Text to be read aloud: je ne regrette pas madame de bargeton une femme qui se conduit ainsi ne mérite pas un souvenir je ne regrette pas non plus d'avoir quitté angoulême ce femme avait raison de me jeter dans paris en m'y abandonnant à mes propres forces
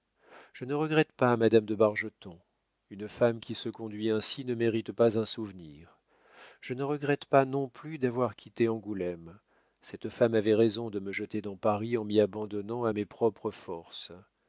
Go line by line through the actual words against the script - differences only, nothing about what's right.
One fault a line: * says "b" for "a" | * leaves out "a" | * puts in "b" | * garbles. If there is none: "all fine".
* says "cette" for "ce"